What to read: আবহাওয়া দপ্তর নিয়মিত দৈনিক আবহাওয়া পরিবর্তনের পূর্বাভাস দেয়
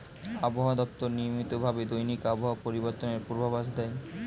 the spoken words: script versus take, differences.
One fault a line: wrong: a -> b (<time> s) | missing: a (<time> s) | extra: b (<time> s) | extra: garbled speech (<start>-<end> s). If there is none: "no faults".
extra: ভাবে (1.6 s)